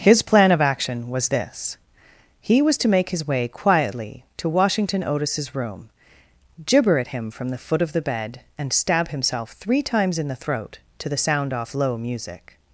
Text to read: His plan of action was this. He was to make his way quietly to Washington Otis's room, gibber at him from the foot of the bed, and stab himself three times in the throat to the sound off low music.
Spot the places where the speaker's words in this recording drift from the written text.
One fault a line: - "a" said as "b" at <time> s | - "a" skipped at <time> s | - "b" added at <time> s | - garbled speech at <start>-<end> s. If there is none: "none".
none